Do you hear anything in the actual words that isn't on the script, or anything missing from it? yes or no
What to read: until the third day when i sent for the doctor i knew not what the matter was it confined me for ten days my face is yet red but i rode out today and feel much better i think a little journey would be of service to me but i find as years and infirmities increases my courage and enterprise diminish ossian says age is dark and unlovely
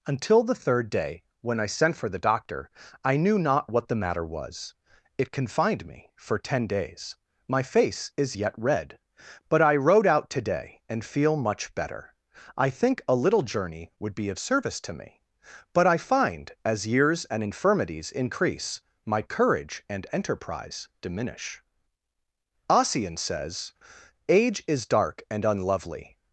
yes